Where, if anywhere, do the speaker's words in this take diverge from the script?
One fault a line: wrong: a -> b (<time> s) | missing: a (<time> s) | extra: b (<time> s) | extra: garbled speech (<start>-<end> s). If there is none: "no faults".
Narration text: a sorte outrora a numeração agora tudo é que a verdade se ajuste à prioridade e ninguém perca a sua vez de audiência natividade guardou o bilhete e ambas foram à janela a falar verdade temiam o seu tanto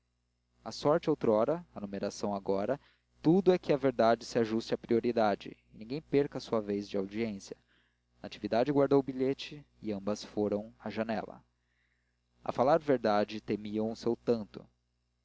no faults